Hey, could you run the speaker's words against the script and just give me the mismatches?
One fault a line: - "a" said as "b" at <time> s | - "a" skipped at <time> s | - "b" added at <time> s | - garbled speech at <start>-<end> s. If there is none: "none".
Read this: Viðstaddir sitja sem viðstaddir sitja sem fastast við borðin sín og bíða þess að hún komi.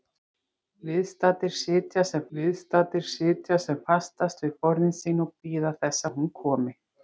none